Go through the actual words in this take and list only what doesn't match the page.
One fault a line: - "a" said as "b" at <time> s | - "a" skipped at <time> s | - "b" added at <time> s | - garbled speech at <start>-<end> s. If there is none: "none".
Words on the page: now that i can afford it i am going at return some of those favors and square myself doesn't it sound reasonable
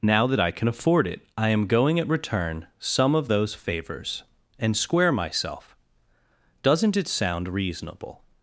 none